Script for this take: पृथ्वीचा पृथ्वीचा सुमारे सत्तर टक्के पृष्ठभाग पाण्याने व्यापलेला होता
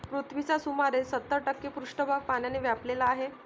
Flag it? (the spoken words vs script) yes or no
yes